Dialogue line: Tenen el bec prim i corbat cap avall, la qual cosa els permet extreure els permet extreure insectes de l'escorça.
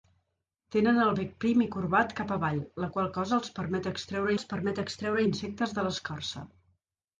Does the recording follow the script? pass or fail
pass